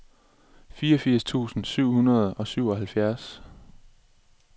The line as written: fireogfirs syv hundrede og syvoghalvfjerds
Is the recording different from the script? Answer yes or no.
yes